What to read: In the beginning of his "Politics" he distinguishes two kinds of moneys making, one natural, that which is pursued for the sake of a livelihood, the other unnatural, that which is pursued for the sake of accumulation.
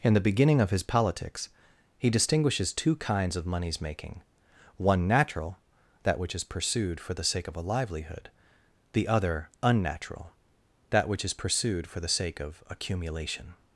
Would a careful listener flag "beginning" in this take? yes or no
no